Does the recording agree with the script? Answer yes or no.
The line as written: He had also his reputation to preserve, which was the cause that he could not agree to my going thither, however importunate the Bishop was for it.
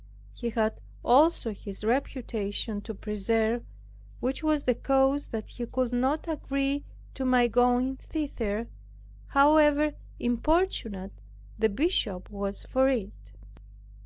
yes